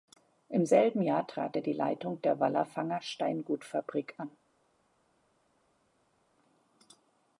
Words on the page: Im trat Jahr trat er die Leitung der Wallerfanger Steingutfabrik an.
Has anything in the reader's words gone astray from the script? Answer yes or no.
yes